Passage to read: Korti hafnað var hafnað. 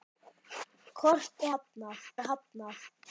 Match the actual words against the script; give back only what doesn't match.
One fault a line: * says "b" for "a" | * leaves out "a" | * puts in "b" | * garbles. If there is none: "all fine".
all fine